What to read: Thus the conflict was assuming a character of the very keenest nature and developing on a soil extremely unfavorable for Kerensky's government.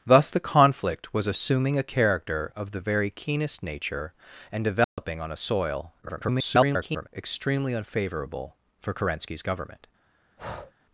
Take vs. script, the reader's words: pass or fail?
fail